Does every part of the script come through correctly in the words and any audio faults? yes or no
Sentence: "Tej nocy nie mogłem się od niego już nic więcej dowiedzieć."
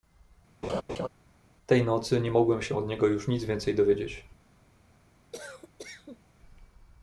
no